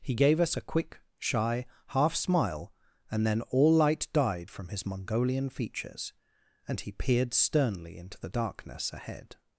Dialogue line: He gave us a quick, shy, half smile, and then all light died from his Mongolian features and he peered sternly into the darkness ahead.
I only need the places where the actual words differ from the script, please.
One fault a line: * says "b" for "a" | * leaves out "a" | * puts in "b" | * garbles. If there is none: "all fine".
all fine